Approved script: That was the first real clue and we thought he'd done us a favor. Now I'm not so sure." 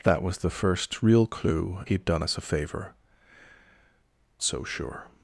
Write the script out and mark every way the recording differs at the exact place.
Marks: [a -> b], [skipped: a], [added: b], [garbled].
That was the first real clue [skipped: and we thought] he'd done us a favor. [skipped: Now I'm not] so sure."